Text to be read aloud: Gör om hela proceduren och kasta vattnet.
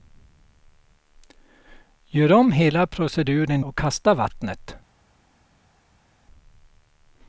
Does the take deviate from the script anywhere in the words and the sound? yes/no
no